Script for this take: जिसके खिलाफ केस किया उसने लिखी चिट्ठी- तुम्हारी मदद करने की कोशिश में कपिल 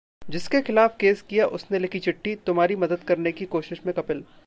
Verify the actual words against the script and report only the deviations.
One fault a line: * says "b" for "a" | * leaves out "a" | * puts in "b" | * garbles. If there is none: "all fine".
all fine